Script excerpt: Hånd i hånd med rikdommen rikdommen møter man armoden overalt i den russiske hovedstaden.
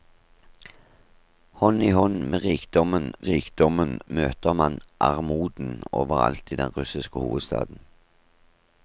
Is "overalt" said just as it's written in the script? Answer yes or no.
yes